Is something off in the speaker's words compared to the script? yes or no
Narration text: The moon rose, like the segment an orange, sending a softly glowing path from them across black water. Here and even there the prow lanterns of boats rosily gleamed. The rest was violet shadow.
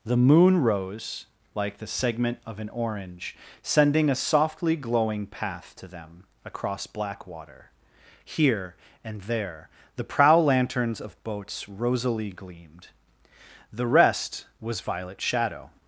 yes